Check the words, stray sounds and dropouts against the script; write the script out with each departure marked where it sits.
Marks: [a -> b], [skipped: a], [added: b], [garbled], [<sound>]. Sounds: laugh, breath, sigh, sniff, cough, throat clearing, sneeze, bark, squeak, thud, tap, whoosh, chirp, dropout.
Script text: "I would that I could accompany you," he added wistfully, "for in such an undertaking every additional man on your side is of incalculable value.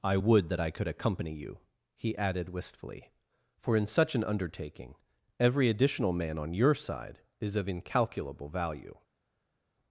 "I would that I could accompany you," he added wistfully, "for in such an undertaking every additional man on your side is of incalculable value.